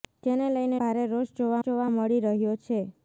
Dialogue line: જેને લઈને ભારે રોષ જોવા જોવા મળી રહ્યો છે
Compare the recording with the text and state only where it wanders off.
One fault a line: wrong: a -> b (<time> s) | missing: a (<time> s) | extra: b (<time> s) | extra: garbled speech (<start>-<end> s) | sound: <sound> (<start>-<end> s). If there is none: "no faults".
no faults